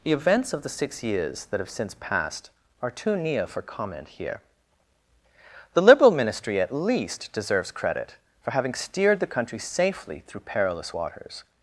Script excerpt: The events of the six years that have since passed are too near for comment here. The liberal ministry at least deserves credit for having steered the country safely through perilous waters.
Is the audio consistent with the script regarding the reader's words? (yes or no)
yes